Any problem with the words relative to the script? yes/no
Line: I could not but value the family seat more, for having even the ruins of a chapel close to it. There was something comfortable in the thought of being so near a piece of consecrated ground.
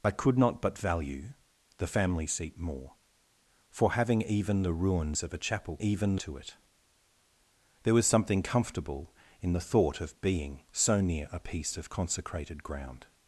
yes